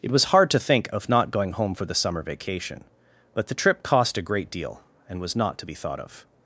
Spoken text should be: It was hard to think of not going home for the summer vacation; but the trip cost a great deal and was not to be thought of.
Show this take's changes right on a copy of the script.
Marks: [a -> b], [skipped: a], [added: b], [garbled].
It was hard to think of not going home for the summer vacation; but the trip cost a great deal and was not to be thought of.